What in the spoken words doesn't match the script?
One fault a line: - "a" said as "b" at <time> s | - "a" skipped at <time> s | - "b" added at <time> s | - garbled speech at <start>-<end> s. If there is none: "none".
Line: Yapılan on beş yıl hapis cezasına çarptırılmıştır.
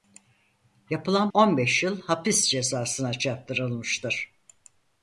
none